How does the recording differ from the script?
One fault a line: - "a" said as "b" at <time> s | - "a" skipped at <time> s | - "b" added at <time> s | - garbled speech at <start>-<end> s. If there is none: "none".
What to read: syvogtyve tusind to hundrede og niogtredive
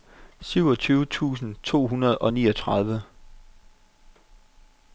none